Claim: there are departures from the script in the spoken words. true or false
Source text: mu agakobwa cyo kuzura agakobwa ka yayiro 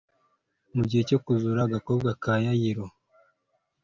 true